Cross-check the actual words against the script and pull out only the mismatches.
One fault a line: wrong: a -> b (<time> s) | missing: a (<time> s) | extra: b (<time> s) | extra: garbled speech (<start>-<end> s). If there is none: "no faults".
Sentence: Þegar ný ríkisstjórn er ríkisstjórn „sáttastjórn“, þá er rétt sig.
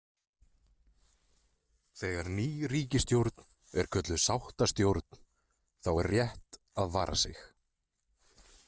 wrong: ríkisstjórn -> kölluð (4.0 s)
extra: að vara (6.8 s)